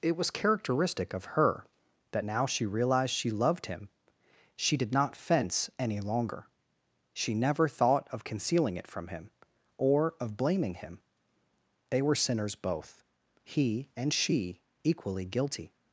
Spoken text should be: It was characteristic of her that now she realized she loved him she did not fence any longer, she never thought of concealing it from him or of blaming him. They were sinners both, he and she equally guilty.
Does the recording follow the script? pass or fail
pass